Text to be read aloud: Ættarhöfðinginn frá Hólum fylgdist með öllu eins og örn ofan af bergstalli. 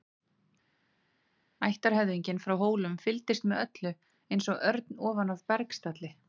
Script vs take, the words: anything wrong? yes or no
no